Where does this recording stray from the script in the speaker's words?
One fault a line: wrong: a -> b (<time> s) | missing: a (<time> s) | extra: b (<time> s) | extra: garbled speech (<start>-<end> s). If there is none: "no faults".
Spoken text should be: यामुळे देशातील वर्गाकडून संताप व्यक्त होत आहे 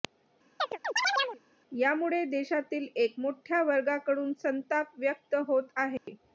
extra: एक मोठ्या (3.0 s)